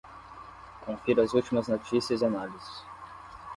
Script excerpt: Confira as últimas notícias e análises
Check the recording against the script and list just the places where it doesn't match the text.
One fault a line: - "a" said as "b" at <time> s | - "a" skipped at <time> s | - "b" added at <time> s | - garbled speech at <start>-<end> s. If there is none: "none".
none